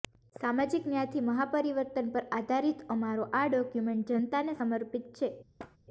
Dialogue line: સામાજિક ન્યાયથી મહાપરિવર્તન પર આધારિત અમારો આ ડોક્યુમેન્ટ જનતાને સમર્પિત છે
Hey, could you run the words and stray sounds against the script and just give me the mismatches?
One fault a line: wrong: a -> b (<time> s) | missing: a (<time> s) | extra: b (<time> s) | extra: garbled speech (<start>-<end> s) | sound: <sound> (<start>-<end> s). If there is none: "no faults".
sound: thud (5.6-5.8 s)